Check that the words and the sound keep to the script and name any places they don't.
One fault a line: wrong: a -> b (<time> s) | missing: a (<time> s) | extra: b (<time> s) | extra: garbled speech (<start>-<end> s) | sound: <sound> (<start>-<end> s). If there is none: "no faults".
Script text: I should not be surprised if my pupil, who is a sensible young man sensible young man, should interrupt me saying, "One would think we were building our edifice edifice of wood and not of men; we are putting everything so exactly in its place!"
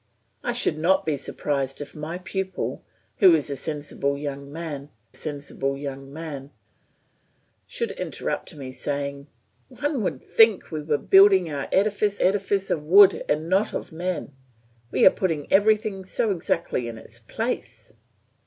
no faults